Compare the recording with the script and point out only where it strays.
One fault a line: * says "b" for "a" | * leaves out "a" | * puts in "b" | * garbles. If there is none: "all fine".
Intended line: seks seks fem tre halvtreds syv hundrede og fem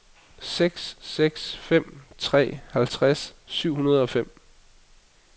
all fine